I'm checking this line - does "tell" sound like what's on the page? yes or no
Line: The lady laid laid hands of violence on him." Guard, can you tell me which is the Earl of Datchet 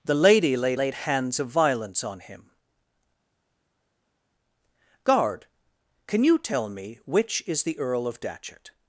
yes